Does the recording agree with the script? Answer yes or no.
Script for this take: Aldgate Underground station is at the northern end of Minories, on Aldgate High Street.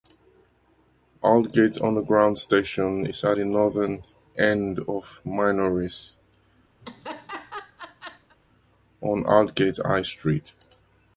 yes